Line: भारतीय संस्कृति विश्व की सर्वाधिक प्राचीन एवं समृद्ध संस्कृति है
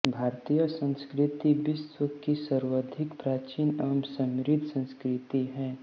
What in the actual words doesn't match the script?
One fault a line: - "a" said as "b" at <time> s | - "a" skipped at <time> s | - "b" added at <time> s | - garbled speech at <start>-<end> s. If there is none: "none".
none